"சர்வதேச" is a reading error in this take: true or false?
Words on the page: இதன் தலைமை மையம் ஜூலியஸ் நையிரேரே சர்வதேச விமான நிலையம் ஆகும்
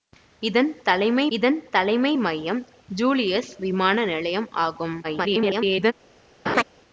true